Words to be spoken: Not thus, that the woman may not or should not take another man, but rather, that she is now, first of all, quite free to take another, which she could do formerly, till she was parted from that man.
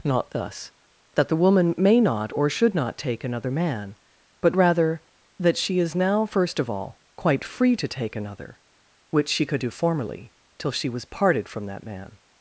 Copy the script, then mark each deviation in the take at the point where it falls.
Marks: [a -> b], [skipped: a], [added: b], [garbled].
Not thus, that the woman may not or should not take another man, but rather, that she is now, first of all, quite free to take another, which she could do formerly, till she was parted from that man.